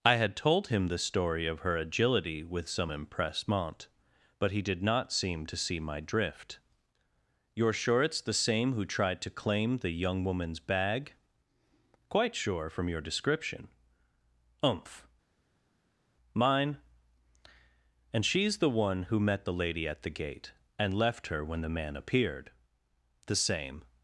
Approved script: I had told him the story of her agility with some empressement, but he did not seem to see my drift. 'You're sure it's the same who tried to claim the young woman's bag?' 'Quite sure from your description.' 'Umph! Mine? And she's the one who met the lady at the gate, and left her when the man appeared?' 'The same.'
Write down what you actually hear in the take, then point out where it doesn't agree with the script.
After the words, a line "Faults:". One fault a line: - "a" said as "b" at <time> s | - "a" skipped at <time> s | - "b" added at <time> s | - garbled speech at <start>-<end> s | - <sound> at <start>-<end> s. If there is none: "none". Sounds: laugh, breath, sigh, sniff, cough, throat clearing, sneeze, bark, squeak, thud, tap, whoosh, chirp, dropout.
I had told him the story of her agility with some empressement, but he did not seem to see my drift. 'You're sure it's the same who tried to claim the young woman's bag?' 'Quite sure from your description.' 'Umph! Mine? And she's the one who met the lady at the gate, and left her when the man appeared?' 'The same.'
Faults:
none